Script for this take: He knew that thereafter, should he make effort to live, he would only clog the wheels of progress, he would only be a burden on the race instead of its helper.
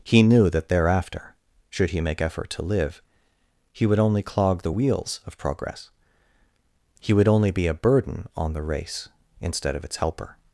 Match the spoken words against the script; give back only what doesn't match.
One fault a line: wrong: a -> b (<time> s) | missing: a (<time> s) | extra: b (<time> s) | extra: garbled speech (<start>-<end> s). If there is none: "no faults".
no faults